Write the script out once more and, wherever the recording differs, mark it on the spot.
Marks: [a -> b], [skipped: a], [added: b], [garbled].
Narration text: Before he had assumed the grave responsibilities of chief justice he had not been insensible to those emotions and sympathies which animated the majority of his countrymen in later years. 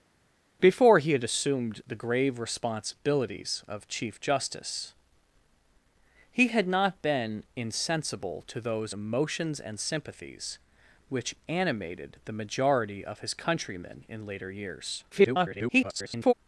Before he had assumed the grave responsibilities of chief justice he had not been insensible to those emotions and sympathies which animated the majority of his countrymen in later years. [garbled]